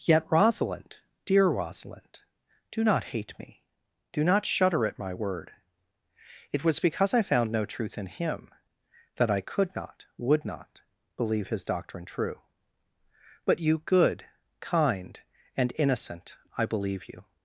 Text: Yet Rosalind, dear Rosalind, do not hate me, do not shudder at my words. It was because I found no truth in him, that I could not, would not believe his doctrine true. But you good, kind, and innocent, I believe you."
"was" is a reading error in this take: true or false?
false